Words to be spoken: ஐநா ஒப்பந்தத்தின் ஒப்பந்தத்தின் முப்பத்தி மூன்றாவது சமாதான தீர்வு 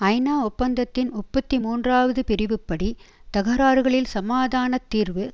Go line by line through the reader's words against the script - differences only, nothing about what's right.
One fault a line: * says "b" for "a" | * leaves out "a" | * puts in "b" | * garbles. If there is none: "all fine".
* leaves out "ஒப்பந்தத்தின்"
* puts in "பிரிவுப்படி தகராறுகளில்"